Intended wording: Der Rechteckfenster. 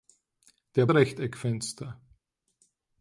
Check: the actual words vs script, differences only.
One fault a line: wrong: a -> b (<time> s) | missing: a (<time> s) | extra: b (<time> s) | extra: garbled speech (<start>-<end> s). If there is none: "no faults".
no faults